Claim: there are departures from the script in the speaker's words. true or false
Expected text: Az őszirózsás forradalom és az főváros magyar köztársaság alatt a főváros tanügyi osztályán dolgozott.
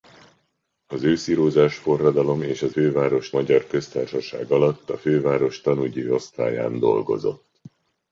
false